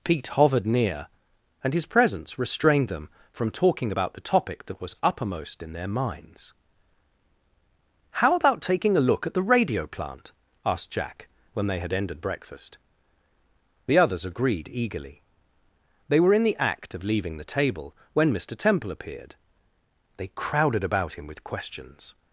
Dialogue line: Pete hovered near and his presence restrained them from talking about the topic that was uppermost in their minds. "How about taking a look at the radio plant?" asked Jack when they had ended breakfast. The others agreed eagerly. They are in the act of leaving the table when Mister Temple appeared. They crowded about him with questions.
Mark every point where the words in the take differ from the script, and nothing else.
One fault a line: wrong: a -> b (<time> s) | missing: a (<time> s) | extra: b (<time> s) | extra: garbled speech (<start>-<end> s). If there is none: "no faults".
wrong: are -> were (16.2 s)